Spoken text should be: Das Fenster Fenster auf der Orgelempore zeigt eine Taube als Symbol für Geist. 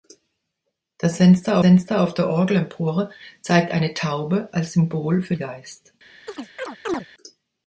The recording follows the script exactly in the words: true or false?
true